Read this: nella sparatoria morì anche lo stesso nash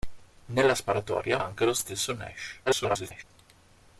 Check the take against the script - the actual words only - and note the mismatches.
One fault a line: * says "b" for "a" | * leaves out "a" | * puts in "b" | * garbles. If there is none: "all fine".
* leaves out "morì"
* garbles